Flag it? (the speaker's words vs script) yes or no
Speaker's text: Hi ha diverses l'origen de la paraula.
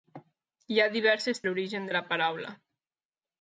no